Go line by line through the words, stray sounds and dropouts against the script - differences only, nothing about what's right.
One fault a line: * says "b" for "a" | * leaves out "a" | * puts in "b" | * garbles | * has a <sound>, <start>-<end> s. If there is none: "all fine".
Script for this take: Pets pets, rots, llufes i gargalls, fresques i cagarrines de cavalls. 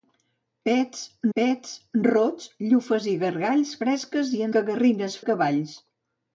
all fine